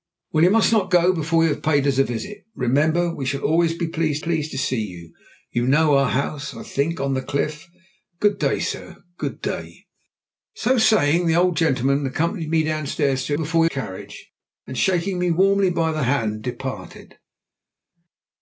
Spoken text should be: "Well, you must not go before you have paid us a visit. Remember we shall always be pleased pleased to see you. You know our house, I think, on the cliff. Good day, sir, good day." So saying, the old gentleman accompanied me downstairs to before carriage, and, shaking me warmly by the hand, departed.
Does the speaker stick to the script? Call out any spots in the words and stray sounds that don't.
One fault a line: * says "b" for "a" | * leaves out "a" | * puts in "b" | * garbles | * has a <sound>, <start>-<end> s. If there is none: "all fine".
all fine